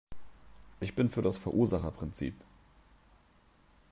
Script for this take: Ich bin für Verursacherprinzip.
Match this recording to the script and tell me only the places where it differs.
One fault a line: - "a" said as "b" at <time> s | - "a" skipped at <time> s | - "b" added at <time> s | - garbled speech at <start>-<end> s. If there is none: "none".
- "das" added at 1.2 s